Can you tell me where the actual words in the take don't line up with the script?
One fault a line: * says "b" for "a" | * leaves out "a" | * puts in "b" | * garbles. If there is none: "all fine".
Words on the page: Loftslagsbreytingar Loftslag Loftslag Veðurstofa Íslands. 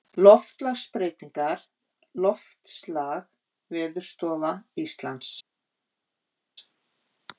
* leaves out "Loftslag"